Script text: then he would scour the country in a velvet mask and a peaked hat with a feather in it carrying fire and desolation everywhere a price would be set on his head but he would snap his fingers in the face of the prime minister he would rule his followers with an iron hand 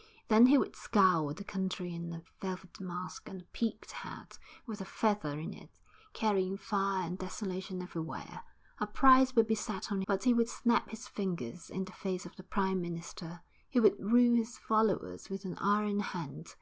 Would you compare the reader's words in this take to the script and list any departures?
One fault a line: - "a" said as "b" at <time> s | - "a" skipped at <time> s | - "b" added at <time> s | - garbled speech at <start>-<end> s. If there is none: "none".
- "his head" skipped at 10.0 s